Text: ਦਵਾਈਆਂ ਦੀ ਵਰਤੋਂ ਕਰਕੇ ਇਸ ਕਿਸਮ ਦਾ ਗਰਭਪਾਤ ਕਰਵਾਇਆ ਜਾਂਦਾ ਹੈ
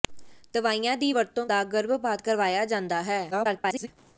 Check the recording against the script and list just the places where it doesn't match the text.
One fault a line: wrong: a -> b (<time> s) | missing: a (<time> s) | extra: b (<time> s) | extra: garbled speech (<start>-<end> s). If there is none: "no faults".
missing: ਕਰਕੇ ਇਸ ਕਿਸਮ (1.4 s)
extra: garbled speech (3.3-3.9 s)